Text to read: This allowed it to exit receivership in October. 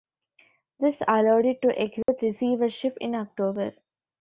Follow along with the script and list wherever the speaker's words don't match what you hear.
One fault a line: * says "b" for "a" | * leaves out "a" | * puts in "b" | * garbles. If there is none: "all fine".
all fine